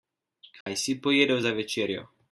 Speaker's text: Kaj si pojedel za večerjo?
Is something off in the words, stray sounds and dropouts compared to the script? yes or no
yes